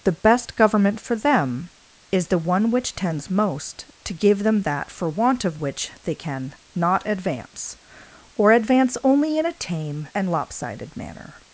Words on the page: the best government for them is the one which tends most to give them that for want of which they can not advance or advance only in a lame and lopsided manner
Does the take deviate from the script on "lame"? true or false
true